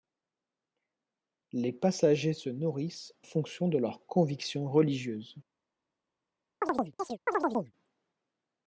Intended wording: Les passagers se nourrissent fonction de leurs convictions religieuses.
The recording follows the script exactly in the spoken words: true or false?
true